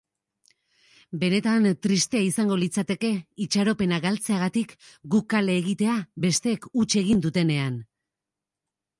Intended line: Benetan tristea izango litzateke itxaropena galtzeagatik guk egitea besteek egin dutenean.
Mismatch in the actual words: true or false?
true